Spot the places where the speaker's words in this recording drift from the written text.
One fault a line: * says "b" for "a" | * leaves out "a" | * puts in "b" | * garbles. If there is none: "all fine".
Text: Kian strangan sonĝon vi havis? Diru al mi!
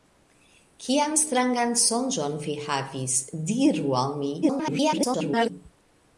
* garbles